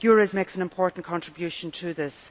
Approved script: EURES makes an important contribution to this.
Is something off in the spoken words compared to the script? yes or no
no